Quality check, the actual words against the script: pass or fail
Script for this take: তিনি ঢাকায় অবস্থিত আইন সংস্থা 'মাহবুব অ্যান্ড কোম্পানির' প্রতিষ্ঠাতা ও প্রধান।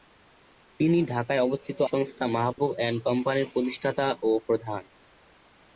fail